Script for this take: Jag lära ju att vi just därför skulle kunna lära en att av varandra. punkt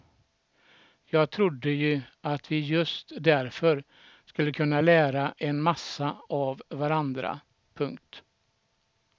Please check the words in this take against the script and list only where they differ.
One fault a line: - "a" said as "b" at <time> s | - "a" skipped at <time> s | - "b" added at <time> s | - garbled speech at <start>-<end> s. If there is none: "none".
- "lära" said as "trodde" at 1.3 s
- "att" said as "massa" at 5.6 s